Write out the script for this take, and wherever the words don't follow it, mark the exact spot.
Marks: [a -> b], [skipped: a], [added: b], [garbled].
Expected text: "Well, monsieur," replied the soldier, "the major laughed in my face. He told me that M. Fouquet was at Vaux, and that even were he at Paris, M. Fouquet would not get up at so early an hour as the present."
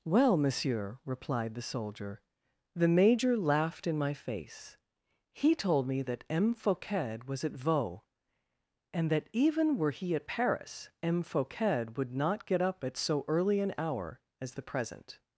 "Well, monsieur," replied the soldier, "the major laughed in my face. He told me that M. Fouquet was at Vaux, and that even were he at Paris, M. Fouquet would not get up at so early an hour as the present."